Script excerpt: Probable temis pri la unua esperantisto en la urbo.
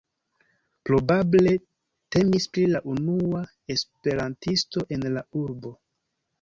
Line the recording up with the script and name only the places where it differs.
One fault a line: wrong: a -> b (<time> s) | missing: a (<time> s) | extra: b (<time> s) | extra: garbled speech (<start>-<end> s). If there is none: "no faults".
no faults